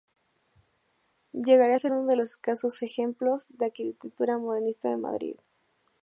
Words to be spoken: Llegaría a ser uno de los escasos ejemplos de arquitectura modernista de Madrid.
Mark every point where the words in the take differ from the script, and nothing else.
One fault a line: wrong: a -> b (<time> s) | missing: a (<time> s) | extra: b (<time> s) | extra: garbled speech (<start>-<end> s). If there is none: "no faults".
no faults